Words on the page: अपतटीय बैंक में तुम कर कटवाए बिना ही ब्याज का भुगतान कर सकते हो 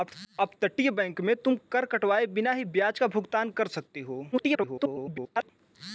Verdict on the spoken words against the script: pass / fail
fail